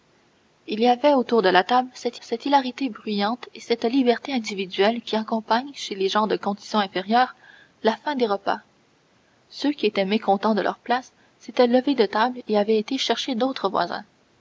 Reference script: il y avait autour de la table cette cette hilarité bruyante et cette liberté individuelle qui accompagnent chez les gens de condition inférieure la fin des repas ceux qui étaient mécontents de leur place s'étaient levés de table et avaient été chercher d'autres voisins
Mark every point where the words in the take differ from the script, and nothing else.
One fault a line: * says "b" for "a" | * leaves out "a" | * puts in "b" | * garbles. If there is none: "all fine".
all fine